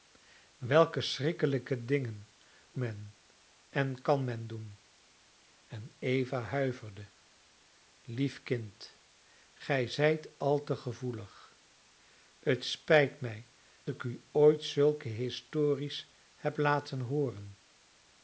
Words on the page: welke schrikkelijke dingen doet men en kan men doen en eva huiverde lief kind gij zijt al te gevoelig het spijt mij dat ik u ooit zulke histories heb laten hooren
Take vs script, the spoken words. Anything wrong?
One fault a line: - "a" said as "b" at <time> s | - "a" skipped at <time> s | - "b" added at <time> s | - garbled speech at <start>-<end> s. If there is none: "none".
- "doet" skipped at 2.3 s
- "dat" skipped at 13.5 s